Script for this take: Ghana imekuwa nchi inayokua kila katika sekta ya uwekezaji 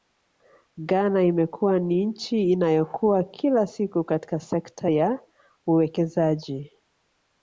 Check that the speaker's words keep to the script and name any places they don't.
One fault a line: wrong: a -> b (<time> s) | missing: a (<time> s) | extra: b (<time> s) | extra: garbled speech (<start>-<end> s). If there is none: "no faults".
extra: ni (1.8 s)
extra: siku (3.6 s)